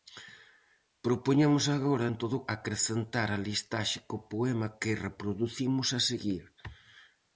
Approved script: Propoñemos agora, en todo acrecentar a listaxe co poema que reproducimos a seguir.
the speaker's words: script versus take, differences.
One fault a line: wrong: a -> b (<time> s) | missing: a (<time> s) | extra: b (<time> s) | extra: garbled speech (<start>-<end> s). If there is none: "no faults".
no faults